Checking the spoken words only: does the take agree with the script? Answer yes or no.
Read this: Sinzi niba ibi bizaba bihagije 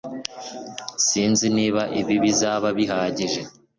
yes